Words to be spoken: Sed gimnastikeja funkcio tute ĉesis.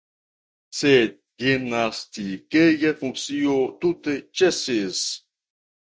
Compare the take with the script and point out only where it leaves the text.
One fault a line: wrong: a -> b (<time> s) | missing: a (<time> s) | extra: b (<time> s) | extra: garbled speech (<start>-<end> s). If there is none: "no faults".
no faults